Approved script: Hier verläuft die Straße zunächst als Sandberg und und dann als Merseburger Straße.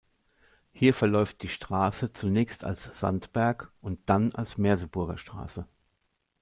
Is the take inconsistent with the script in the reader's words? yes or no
yes